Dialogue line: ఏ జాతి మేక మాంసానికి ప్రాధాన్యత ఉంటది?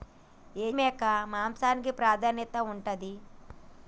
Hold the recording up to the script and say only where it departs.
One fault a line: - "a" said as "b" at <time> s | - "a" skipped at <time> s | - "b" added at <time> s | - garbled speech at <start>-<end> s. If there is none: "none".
- "జాతి" skipped at 0.7 s